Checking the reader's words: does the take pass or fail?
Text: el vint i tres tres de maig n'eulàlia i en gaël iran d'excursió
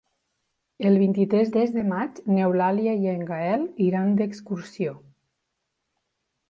pass